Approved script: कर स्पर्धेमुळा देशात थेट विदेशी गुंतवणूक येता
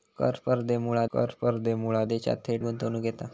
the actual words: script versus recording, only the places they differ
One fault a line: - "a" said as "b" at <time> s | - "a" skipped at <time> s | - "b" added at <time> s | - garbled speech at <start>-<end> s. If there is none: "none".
- "कर स्पर्धेमुळा" added at 1.1 s
- "विदेशी" skipped at 2.6 s